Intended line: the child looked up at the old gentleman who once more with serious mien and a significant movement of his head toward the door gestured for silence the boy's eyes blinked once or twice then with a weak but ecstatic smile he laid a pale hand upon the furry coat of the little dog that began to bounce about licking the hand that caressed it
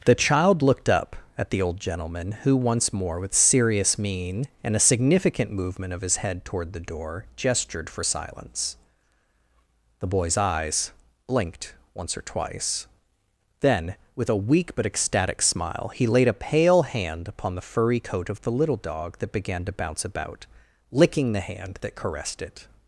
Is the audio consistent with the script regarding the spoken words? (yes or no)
yes